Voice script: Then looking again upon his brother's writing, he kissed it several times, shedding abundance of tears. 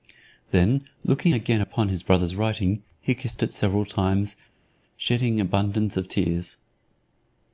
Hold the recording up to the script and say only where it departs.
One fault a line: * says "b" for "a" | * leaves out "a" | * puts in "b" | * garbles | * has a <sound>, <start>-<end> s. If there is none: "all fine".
all fine